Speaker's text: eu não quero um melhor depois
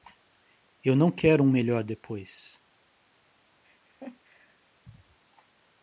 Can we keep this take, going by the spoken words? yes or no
yes